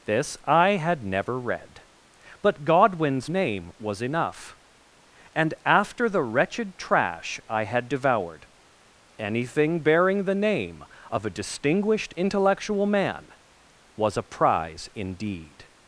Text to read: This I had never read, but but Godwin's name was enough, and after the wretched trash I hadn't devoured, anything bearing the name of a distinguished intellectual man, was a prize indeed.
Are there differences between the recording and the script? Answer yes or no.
yes